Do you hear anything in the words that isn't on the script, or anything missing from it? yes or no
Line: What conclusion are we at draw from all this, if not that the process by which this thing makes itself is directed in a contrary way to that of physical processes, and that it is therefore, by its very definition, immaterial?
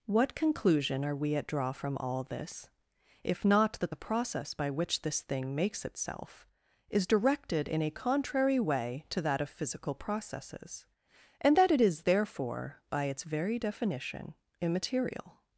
no